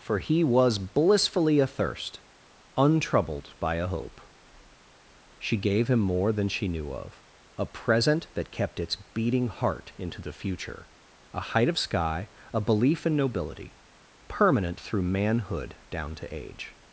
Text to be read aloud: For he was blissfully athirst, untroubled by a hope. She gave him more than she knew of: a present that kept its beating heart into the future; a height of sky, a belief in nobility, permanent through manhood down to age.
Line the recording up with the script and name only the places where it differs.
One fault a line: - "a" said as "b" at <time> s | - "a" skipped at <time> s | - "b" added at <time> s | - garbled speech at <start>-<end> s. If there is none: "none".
none